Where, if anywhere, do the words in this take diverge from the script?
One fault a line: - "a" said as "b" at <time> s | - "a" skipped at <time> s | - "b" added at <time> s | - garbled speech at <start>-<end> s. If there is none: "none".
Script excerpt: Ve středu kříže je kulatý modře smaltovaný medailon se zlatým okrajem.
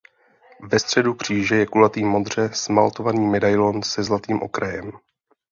none